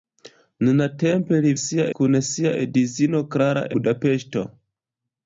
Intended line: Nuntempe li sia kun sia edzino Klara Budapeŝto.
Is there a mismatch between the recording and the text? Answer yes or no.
no